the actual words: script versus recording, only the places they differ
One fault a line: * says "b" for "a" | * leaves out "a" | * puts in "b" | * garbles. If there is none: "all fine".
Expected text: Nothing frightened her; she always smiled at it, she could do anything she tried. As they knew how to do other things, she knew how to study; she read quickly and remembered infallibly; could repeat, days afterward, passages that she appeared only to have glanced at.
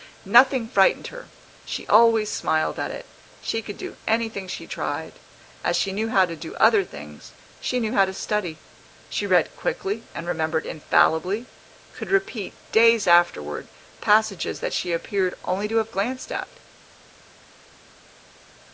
* says "she" for "they"